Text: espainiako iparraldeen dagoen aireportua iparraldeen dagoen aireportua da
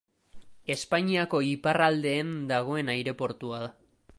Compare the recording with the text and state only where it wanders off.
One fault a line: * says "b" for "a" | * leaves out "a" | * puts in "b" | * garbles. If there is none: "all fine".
* leaves out "iparraldeen dagoen aireportua"